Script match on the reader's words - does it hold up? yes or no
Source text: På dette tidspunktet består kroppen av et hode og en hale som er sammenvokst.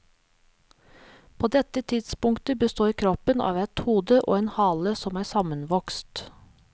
yes